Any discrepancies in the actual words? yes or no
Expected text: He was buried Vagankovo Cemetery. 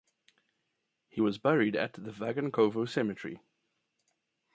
yes